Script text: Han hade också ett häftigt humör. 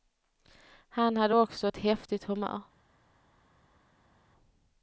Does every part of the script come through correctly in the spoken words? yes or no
yes